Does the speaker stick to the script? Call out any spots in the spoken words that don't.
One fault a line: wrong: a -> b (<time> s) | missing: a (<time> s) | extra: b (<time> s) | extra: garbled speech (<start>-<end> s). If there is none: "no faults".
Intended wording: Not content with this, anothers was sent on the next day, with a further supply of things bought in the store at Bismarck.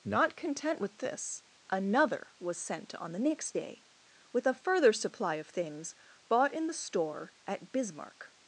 wrong: anothers -> another (1.7 s)